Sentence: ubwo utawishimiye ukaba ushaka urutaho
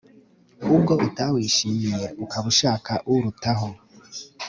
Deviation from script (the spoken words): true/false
false